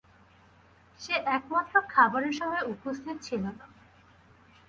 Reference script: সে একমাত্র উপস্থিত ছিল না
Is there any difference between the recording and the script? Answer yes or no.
yes